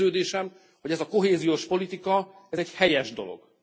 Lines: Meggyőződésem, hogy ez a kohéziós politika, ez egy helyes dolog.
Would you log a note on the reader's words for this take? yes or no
no